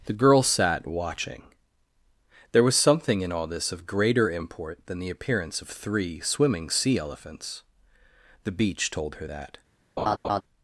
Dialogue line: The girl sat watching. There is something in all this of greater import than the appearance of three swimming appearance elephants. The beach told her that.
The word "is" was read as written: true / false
false